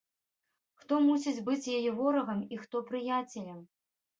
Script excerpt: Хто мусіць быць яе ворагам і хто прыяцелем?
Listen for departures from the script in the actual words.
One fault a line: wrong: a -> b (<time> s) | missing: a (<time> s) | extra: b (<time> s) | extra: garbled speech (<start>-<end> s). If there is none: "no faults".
no faults